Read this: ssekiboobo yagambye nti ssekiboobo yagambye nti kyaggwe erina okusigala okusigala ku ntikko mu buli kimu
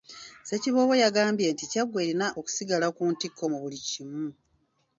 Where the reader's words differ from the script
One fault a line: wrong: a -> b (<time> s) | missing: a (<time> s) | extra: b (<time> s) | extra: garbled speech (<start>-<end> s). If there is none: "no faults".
missing: ssekiboobo yagambye nti (1.6 s)
missing: okusigala (2.9 s)